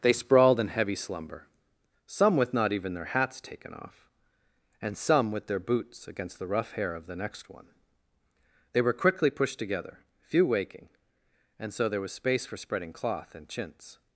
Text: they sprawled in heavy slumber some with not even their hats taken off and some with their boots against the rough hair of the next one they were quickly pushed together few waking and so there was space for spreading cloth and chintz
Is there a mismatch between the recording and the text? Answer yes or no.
no